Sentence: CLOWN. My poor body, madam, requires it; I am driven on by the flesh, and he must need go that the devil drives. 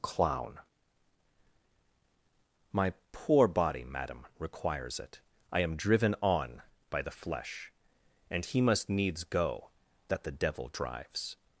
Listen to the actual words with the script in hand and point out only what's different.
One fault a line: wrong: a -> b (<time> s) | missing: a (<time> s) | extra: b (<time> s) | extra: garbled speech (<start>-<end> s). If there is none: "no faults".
wrong: need -> needs (8.9 s)